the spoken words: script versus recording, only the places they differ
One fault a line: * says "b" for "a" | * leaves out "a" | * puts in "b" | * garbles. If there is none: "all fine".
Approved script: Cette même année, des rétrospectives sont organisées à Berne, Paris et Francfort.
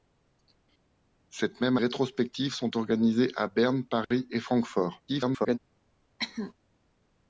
* leaves out "année des"
* garbles